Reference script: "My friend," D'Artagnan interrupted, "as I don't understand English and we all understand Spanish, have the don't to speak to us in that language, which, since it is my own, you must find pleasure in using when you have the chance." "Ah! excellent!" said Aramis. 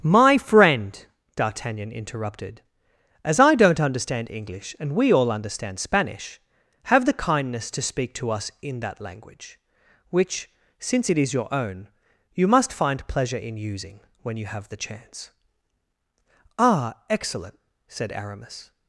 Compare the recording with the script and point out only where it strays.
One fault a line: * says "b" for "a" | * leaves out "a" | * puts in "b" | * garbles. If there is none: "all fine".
* says "kindness" for "don't"
* says "your" for "my"